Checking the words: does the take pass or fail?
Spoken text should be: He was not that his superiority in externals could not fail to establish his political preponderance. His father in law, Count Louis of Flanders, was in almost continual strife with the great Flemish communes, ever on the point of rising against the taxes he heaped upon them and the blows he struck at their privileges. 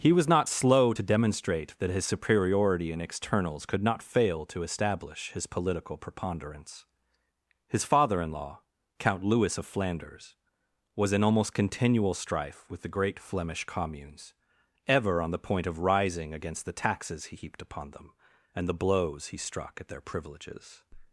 fail